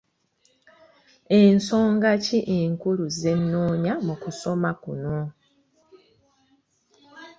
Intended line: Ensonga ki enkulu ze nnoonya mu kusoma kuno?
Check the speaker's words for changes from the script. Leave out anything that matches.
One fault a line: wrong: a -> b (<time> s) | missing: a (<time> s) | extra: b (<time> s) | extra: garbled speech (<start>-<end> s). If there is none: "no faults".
no faults